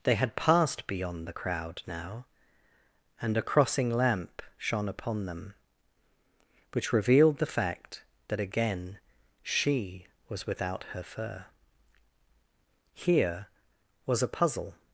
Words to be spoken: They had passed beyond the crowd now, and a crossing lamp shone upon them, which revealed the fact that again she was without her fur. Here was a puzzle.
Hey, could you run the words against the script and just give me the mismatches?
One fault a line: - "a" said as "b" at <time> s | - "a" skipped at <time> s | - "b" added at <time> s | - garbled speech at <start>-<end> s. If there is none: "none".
none